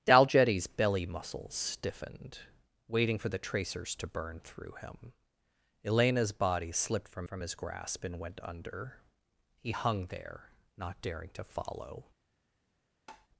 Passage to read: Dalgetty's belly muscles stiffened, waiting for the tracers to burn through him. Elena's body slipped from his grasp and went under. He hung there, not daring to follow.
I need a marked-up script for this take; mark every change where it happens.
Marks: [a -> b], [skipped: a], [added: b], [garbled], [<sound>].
Dalgetty's belly muscles stiffened, waiting for the tracers to burn through him. Elena's body slipped from [added: from] his grasp and went under. He hung there, not daring to follow. [tap]